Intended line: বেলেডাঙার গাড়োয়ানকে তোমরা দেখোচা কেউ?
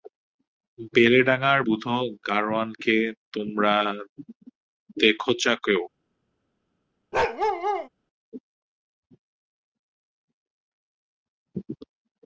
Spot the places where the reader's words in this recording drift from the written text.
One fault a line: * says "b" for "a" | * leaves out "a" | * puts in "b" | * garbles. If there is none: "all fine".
* puts in "বুধো"